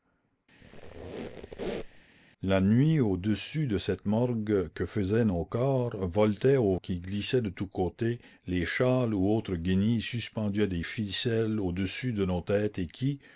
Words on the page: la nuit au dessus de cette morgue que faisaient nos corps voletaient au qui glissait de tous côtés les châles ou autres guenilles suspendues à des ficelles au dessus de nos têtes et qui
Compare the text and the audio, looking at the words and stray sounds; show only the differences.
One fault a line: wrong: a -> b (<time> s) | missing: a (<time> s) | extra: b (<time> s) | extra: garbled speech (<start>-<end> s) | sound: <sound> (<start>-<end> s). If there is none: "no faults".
sound: squeak (0.6-2.0 s)